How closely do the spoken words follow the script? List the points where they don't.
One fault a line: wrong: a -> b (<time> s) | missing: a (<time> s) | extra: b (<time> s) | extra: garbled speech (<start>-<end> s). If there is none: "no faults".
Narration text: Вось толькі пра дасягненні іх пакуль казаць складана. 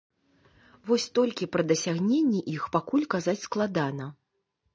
no faults